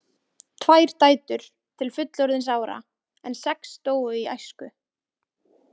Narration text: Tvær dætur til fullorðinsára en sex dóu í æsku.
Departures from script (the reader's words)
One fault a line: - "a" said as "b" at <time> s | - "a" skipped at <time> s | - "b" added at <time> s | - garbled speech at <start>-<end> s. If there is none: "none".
none